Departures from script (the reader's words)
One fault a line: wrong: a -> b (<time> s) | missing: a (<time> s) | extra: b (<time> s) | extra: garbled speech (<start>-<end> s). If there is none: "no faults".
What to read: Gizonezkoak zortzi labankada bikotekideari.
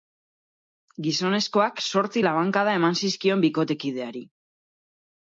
extra: eman zizkion (2.8 s)